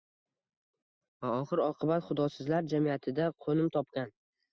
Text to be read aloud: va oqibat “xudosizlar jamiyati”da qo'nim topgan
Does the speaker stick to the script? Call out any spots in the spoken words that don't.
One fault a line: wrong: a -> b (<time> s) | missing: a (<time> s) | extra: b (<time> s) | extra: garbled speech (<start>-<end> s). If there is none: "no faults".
extra: oxir (1.4 s)